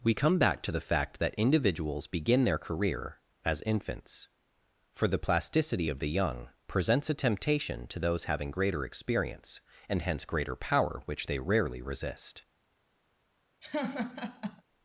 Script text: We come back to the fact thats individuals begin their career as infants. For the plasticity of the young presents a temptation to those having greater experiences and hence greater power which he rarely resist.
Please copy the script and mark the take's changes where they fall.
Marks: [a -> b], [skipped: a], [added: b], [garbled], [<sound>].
We come back to the fact [thats -> that] individuals begin their career as infants. For the plasticity of the young presents a temptation to those having greater [experiences -> experience] and hence greater power which [he -> they] rarely resist. [laugh]